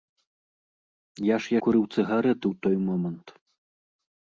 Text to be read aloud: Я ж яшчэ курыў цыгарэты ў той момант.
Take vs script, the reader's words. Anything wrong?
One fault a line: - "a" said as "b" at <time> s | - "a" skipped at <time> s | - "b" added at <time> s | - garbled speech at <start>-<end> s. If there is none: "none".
- "яшчэ" skipped at 1.5 s